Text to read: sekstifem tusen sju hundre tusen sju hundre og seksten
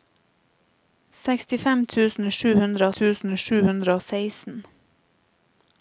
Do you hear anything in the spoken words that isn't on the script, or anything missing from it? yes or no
no